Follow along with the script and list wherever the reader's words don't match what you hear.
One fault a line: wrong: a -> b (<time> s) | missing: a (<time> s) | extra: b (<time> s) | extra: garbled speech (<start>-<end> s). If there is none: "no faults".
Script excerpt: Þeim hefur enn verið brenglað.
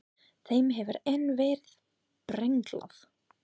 no faults